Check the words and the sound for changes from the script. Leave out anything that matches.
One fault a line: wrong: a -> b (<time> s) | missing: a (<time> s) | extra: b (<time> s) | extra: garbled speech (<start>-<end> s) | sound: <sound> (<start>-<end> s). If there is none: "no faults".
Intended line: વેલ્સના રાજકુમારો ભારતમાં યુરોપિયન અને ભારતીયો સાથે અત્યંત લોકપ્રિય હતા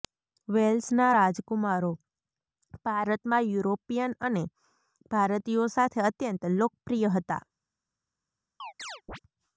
sound: chirp (8.6-9.2 s)